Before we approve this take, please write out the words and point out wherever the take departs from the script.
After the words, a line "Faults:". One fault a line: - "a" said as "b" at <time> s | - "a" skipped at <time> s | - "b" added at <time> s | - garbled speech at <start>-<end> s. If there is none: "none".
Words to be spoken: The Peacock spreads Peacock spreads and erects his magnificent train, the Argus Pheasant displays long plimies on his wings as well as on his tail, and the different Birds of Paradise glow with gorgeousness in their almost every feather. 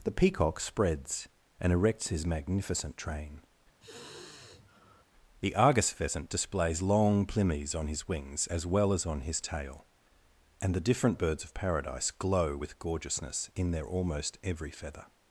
The Peacock spreads and erects his magnificent train, the Argus Pheasant displays long plimies on his wings as well as on his tail, and the different Birds of Paradise glow with gorgeousness in their almost every feather.
Faults:
- "Peacock spreads" skipped at 1.3 s